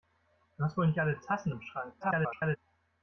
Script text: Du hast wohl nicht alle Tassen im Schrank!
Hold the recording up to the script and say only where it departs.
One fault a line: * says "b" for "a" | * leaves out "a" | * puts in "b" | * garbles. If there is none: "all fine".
* garbles